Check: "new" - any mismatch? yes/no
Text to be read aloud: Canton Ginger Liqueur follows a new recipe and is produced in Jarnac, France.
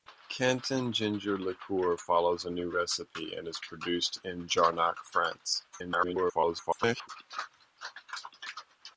no